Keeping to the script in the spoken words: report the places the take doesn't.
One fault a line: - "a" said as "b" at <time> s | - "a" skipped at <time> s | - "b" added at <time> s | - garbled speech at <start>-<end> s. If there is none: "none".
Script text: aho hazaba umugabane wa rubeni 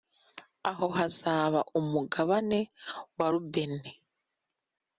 none